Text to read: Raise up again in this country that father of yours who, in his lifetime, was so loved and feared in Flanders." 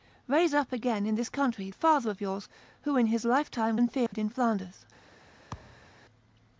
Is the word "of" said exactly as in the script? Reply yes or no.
yes